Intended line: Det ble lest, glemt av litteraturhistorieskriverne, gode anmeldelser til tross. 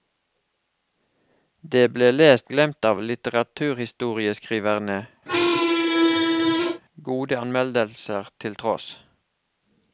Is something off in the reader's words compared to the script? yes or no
no